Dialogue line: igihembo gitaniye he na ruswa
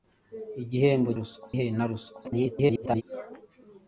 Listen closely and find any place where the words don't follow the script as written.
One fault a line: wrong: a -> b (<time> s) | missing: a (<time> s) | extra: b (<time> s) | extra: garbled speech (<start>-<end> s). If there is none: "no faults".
wrong: gitaniye -> ruswa (1.2 s)
extra: garbled speech (2.2-3.0 s)